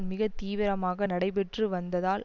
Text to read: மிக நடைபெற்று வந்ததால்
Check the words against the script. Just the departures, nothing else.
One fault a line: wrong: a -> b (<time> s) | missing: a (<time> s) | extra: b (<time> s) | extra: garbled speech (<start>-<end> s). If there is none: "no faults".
extra: தீவிரமாக (0.4 s)